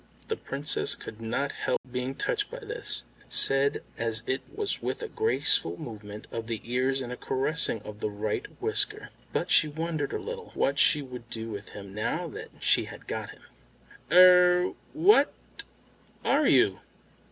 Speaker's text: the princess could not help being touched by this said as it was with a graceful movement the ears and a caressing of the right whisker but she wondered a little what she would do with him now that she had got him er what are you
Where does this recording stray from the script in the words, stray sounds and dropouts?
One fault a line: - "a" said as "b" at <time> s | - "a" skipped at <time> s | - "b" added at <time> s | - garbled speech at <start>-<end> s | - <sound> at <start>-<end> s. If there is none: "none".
- dropout at 1.8-1.8 s
- "of" added at 6.3 s